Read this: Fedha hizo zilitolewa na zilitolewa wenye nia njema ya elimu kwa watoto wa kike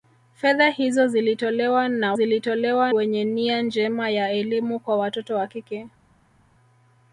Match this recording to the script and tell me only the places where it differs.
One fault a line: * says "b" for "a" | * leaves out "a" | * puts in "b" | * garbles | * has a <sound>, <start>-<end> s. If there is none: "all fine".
all fine